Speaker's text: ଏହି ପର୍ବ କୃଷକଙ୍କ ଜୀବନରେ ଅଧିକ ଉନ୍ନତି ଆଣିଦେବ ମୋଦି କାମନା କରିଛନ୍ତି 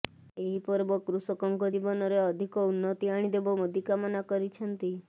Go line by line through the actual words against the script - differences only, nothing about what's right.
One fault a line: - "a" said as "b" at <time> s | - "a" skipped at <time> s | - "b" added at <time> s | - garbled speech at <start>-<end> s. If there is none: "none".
none